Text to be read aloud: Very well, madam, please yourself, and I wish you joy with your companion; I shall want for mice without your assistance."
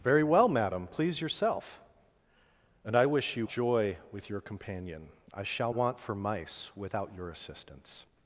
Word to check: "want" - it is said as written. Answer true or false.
true